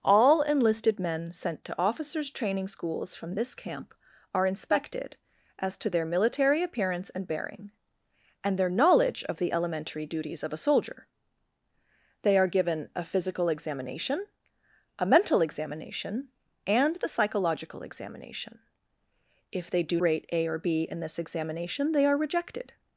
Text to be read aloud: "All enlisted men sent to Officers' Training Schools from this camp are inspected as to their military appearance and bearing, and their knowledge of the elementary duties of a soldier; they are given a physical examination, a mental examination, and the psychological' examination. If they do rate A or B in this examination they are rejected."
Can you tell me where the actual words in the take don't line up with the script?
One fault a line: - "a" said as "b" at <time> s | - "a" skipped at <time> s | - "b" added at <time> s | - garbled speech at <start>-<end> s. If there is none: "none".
none